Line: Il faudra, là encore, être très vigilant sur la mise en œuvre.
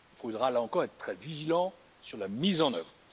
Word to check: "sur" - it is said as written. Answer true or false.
true